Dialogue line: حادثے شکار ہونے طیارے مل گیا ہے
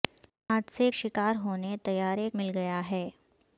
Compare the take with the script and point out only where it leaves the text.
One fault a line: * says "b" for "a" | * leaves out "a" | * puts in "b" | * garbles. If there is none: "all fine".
all fine